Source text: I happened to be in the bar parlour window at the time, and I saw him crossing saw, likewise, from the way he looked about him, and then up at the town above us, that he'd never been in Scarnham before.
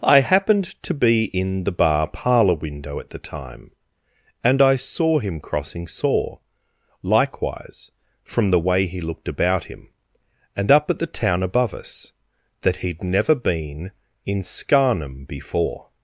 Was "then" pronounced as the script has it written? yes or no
no